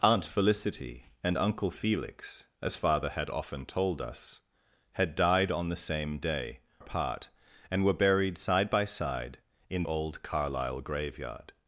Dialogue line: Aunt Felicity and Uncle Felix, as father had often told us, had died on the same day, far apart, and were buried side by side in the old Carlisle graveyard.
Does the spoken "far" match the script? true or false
false